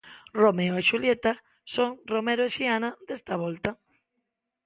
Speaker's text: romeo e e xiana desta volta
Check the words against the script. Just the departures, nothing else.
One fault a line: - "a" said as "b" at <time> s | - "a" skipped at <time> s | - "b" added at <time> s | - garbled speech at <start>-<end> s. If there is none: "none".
- "xulieta son romero" added at 0.9 s